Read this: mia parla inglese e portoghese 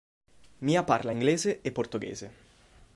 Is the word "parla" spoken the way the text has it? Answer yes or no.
yes